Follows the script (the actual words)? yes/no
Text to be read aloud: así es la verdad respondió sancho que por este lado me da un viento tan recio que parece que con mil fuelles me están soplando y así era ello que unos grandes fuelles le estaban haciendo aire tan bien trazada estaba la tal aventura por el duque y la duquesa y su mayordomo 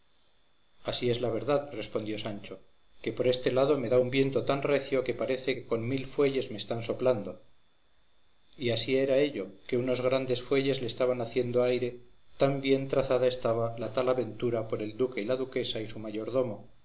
yes